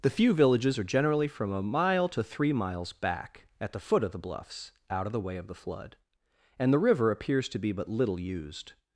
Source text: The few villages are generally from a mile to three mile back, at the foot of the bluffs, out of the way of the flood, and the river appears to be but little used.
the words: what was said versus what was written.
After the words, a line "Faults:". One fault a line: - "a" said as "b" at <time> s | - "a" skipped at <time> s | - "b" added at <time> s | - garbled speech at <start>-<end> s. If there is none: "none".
The few villages are generally from a mile to three miles back, at the foot of the bluffs, out of the way of the flood, and the river appears to be but little used.
Faults:
- "mile" said as "miles" at 2.5 s